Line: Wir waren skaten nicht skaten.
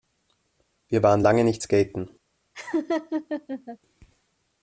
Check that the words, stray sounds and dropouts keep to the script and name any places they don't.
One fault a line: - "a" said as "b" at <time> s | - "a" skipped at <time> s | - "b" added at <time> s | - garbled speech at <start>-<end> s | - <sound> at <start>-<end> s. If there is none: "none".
- "skaten" said as "lange" at 1.2 s
- laugh at 2.5-3.8 s